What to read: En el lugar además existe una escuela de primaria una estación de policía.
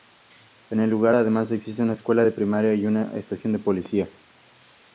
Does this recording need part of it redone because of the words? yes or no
yes